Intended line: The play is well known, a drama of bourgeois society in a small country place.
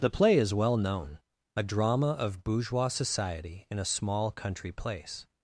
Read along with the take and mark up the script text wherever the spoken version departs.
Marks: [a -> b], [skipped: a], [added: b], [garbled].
The play is well known, a drama of bourgeois society in a small country place.